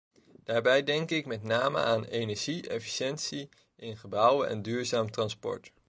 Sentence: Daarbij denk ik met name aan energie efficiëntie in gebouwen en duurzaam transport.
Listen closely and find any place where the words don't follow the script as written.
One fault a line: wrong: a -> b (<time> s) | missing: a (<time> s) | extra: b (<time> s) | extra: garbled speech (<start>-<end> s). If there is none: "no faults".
no faults